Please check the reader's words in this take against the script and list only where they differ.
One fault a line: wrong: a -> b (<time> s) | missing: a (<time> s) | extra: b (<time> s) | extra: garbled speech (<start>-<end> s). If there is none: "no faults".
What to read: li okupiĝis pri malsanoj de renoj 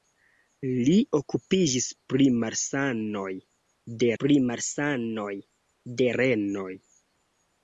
extra: pri malsanoj de (4.2 s)